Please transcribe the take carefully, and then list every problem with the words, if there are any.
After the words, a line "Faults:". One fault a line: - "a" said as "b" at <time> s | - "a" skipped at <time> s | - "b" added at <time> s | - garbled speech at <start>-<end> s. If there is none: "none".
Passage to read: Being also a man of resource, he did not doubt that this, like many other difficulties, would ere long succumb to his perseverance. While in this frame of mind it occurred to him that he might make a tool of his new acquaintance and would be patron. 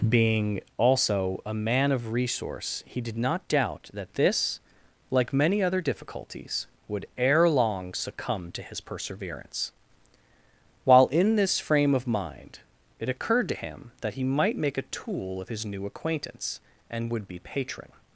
Being also a man of resource, he did not doubt that this, like many other difficulties, would ere long succumb to his perseverance. While in this frame of mind it occurred to him that he might make a tool of his new acquaintance and would be patron.
Faults:
none